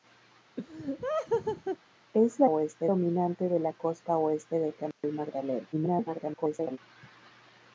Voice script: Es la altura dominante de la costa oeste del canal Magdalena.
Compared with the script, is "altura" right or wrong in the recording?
wrong